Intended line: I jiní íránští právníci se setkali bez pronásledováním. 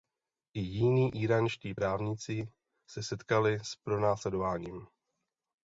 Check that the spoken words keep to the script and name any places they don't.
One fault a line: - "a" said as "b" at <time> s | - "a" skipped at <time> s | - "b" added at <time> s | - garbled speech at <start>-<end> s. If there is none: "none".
- "bez" said as "s" at 3.6 s